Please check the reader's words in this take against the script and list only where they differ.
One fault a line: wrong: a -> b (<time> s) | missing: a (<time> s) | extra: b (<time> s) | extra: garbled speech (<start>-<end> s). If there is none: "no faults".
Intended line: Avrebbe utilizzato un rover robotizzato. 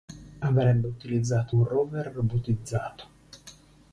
no faults